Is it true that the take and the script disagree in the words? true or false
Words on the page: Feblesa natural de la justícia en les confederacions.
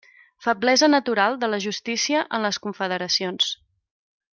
false